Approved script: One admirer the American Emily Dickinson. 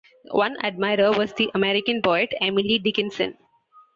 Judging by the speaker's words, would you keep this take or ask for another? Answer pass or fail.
fail